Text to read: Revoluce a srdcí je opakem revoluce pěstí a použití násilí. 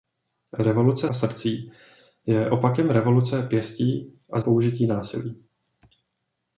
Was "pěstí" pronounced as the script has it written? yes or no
yes